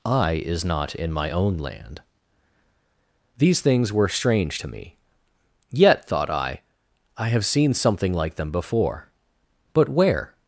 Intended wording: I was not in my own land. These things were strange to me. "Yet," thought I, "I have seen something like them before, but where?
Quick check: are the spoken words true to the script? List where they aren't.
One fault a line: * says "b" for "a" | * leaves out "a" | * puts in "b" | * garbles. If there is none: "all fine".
* says "is" for "was"